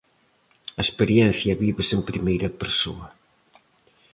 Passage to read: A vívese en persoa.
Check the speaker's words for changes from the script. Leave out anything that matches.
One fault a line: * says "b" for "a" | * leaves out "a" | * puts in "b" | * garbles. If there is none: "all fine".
* puts in "experiencia"
* puts in "primeira"